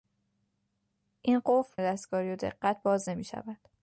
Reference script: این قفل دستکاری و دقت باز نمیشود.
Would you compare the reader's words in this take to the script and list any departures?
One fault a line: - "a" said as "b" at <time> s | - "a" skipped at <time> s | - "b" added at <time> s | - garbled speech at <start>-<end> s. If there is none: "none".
none